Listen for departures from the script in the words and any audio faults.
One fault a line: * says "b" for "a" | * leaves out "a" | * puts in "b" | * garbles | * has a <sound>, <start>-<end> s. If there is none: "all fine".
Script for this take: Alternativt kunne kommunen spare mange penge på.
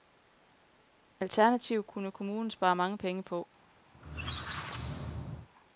* has a squeak, 3.9-5.5 s